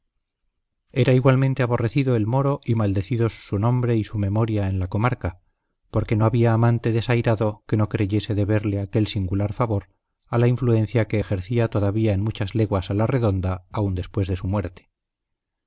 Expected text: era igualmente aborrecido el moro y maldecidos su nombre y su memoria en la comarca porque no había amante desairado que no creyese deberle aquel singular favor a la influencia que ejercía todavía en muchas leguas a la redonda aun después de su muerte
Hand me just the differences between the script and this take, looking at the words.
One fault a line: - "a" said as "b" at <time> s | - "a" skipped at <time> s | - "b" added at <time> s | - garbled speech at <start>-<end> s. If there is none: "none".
none